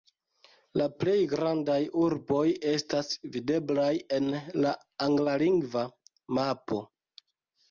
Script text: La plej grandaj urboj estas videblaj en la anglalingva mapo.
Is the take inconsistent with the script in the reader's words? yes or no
no